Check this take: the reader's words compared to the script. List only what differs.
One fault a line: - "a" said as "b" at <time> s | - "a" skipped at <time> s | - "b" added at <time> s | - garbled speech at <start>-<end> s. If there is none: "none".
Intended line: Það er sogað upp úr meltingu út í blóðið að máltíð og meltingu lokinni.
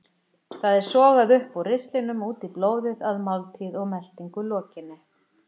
- "meltingu" said as "ristlinum" at 1.7 s